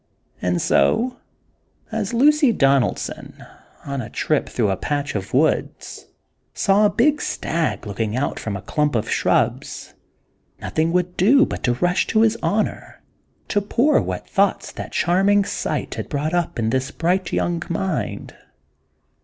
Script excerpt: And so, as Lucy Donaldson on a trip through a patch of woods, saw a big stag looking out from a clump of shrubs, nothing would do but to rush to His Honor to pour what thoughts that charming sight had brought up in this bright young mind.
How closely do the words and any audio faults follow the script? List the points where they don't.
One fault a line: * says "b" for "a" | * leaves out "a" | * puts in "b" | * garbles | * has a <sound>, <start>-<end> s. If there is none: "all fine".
all fine